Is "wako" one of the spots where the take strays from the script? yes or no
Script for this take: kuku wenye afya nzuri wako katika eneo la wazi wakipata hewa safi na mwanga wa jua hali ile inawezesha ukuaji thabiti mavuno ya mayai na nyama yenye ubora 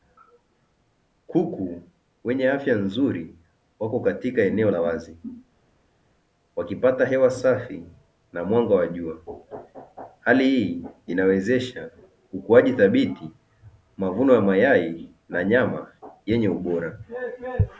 no